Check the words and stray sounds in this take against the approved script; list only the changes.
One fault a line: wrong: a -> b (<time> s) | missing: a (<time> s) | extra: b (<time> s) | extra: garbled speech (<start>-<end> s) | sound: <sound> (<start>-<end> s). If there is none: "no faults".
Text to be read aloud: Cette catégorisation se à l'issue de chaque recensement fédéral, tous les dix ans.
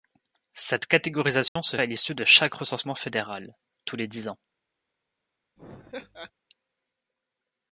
sound: dropout (1.5-1.6 s)
sound: laugh (5.6-6.3 s)